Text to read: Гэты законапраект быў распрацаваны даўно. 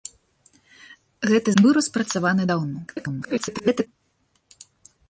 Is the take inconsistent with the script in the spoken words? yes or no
yes